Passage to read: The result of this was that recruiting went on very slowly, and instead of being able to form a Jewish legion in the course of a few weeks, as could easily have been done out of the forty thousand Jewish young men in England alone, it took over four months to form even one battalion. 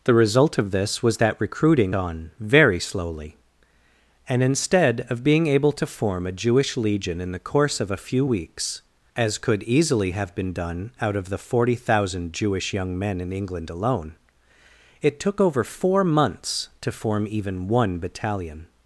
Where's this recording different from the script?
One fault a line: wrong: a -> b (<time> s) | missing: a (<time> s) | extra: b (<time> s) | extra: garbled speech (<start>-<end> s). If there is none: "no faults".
missing: went (1.9 s)